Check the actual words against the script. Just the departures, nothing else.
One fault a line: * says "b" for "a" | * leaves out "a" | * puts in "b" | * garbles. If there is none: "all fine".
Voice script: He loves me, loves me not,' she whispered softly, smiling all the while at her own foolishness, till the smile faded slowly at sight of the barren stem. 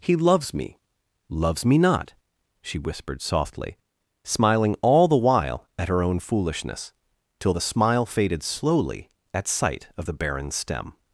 all fine